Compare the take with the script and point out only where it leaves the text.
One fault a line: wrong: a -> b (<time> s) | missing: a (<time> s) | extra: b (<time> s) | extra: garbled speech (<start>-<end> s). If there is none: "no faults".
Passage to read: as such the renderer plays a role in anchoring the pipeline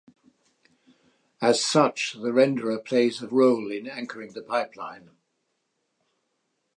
no faults